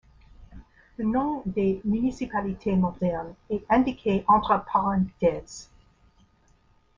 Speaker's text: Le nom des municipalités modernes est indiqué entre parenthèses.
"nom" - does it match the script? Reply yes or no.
yes